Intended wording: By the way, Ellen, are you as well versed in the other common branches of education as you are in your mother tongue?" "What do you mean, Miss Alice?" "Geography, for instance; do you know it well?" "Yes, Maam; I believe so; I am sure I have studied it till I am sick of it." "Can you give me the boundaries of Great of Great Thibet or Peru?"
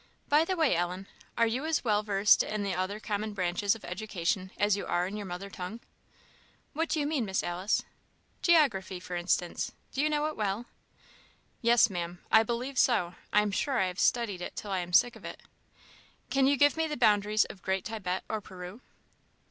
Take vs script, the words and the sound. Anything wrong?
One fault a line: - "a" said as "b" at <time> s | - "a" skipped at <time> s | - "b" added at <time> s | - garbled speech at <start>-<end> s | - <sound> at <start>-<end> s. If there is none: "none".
- "of Great" skipped at 17.9 s